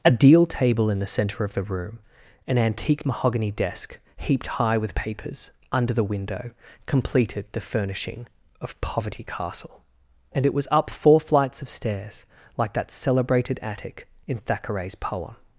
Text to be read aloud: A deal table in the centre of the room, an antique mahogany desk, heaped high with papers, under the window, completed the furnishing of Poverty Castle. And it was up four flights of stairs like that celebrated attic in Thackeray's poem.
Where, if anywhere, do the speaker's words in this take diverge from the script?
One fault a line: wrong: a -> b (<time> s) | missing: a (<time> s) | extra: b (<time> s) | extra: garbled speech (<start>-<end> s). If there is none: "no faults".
no faults